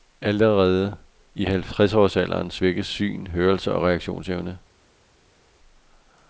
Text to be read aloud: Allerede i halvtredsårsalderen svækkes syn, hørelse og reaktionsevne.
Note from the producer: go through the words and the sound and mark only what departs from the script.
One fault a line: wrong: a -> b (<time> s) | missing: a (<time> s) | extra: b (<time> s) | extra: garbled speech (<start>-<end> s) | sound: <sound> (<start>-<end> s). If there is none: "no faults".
no faults